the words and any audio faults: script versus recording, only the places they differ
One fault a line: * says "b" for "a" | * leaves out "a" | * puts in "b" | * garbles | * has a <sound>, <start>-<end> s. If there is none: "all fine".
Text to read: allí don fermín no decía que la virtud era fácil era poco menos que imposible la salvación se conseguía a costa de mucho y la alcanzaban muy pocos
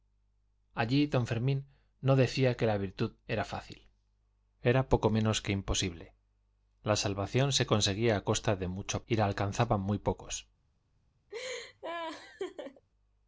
* has a laugh, 11.3-12.9 s